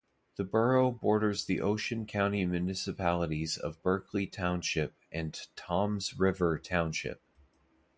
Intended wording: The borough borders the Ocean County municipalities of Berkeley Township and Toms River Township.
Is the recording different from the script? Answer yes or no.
no